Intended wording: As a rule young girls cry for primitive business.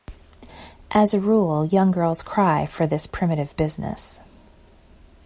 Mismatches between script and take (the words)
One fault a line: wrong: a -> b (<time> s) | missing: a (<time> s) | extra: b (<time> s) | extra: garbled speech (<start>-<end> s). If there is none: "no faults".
extra: this (2.9 s)